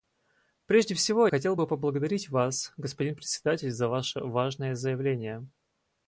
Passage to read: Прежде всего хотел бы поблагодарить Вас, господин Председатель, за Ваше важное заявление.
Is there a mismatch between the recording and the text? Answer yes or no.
no